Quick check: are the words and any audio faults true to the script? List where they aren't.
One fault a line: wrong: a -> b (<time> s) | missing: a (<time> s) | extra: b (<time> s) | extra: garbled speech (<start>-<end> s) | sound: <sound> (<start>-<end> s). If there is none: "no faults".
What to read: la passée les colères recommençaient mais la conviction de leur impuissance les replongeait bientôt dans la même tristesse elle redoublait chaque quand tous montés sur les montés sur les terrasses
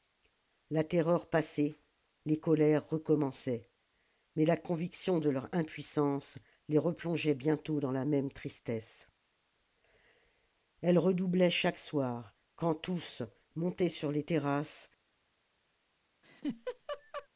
extra: terreur (0.8 s)
extra: soir (11.8 s)
missing: montés sur les (14.2 s)
sound: laugh (16.2-17.3 s)